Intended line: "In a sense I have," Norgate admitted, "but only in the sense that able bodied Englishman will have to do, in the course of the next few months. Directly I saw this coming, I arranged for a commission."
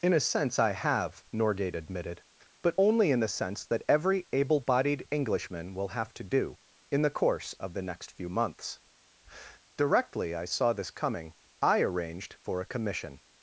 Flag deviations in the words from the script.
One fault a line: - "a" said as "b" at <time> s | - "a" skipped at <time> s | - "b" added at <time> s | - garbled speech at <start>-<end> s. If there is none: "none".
- "every" added at 3.9 s